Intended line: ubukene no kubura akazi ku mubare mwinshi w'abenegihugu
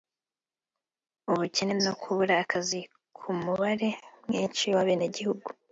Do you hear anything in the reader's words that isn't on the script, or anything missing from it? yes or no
no